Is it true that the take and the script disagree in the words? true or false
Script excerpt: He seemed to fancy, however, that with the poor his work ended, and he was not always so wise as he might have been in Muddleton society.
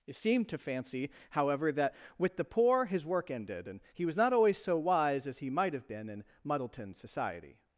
false